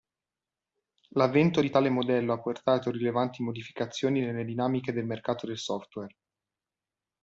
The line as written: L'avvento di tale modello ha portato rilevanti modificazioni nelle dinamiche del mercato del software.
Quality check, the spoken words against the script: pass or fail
pass